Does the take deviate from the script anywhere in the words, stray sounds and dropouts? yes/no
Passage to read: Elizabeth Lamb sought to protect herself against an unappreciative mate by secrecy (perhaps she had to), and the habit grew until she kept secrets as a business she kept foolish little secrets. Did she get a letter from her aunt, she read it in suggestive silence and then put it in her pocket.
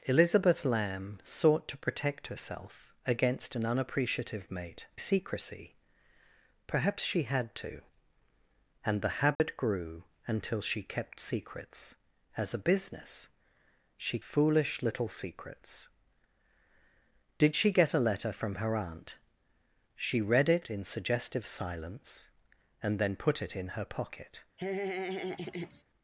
yes